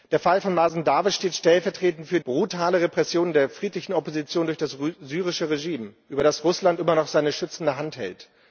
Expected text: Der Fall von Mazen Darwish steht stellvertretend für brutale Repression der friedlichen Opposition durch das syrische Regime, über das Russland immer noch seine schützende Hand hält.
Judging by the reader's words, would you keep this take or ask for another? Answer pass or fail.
pass